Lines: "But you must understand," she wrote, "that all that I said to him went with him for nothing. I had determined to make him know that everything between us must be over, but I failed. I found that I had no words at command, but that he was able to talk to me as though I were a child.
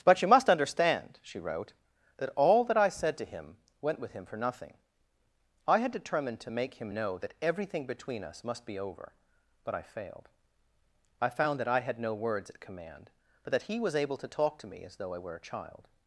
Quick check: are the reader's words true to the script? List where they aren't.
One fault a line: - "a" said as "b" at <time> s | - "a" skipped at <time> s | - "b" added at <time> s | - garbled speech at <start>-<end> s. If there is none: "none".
none